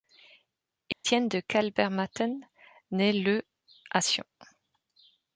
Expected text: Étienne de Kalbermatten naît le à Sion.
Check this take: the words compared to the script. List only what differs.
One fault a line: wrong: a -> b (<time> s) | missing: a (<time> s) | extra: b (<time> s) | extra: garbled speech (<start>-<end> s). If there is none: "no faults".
no faults